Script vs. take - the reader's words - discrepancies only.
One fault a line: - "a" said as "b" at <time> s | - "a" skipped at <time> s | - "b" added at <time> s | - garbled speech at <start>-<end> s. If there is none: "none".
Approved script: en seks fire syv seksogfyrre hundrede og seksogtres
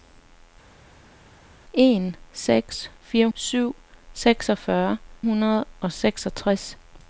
none